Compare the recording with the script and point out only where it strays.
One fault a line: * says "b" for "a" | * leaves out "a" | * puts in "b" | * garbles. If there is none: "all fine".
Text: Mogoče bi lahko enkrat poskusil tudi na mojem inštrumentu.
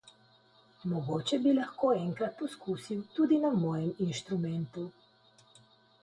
all fine